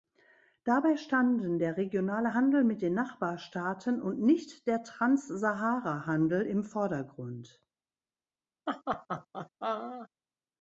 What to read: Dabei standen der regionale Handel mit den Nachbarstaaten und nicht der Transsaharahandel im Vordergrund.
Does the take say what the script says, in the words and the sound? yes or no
no